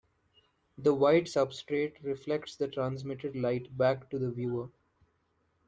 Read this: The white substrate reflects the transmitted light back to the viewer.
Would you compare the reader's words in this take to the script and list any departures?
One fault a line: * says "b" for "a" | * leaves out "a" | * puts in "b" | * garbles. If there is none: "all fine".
all fine